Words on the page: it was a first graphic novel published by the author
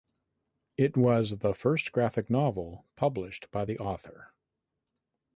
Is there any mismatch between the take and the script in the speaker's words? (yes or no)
yes